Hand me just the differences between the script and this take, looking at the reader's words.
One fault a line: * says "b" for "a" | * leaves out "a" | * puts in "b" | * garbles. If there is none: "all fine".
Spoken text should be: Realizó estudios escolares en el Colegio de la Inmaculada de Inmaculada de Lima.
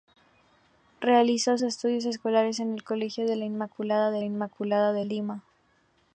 all fine